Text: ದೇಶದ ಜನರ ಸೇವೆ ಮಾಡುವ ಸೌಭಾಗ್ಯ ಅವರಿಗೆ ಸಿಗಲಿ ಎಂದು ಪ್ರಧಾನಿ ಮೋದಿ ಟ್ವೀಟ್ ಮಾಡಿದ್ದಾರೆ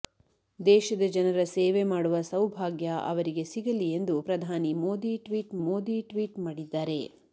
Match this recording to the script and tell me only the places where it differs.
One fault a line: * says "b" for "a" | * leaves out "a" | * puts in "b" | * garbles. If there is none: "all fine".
* puts in "ಮೋದಿ ಟ್ವೀಟ್"